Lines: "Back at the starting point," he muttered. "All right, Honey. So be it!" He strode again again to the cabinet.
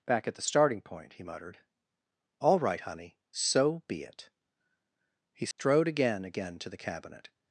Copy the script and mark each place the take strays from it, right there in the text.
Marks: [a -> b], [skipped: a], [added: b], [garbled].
"Back at the starting point," he muttered. "All right, Honey. So be it!" He strode again again to the cabinet.